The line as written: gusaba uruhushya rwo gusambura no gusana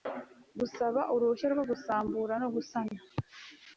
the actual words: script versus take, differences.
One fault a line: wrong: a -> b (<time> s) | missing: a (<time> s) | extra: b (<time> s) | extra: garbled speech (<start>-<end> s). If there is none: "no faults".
no faults